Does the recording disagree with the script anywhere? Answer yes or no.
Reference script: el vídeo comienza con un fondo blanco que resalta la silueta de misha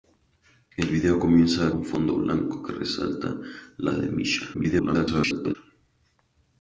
yes